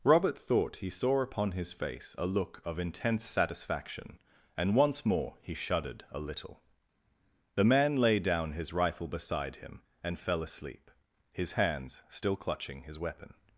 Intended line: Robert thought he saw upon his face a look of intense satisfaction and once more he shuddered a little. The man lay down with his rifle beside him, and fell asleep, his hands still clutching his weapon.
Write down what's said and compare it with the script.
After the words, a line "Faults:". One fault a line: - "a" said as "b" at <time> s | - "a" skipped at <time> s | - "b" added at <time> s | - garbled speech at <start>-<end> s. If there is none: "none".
Robert thought he saw upon his face a look of intense satisfaction and once more he shuddered a little. The man lay down his rifle beside him, and fell asleep, his hands still clutching his weapon.
Faults:
- "with" skipped at 8.5 s